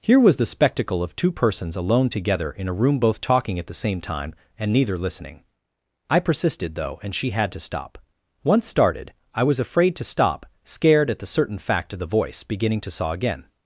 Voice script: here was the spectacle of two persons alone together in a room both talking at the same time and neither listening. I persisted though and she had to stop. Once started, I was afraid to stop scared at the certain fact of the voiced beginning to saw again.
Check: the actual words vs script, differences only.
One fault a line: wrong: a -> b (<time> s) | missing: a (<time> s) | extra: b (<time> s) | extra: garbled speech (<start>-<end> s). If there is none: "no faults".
wrong: voiced -> voice (12.0 s)